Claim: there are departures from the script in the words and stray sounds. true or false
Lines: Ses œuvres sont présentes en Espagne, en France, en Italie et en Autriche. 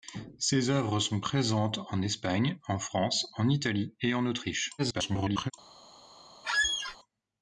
true